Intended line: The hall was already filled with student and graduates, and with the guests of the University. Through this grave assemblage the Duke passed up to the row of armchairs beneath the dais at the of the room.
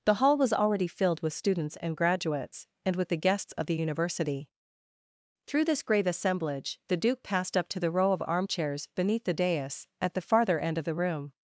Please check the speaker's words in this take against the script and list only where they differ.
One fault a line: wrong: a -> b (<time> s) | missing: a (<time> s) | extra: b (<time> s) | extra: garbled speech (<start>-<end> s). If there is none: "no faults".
wrong: student -> students (1.3 s)
extra: farther end (10.2 s)